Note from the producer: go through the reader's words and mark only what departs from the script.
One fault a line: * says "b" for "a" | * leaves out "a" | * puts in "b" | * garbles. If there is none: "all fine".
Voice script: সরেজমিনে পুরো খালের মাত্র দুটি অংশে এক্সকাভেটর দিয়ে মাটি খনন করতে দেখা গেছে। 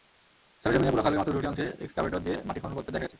all fine